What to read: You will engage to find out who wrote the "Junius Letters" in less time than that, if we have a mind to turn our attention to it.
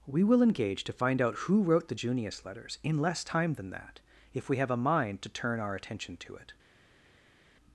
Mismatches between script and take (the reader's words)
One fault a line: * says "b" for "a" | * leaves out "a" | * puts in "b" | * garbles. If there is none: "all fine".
* says "We" for "You"